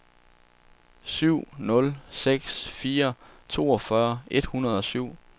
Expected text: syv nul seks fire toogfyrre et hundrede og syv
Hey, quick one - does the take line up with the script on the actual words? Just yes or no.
yes